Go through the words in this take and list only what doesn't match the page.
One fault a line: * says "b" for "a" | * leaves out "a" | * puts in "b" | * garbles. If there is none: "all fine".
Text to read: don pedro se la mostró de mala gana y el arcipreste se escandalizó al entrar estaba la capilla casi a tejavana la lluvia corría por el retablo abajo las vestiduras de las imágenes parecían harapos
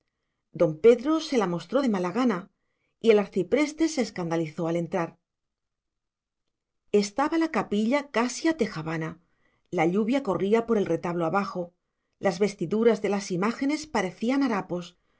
all fine